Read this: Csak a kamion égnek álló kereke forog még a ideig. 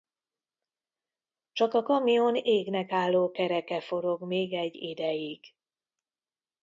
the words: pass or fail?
fail